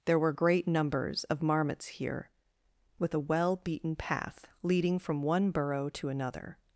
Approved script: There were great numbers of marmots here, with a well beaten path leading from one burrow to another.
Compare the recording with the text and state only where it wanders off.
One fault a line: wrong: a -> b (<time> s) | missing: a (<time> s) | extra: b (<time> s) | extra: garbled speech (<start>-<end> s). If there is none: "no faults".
no faults